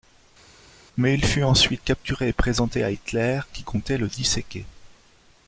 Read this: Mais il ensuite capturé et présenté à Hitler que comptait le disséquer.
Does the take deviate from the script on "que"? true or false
true